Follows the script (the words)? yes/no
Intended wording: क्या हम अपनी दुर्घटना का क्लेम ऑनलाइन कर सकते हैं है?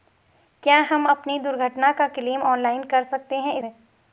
yes